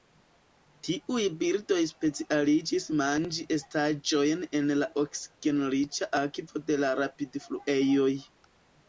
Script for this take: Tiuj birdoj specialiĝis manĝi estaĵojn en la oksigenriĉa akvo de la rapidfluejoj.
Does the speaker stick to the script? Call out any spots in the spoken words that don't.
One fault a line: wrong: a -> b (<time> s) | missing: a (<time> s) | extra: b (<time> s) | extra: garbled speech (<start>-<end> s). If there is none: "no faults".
no faults